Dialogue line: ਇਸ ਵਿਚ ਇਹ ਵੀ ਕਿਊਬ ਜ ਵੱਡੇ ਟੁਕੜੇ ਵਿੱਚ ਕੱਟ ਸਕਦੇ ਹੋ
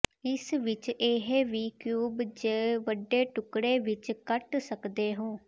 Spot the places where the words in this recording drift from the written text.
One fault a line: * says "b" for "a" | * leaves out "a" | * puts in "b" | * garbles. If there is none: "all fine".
all fine